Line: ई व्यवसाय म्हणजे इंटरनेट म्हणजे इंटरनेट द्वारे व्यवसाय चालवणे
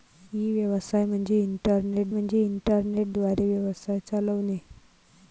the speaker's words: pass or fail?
pass